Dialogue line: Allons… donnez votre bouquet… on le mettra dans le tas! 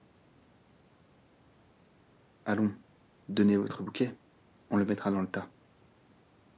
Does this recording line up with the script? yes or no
yes